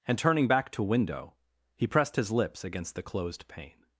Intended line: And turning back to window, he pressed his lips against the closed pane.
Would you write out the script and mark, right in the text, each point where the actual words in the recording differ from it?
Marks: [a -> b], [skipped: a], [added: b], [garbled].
And turning back to window, he pressed his lips against the closed pane.